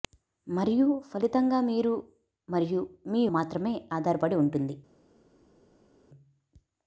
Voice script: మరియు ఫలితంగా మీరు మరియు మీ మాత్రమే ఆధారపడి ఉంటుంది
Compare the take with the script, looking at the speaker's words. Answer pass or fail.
pass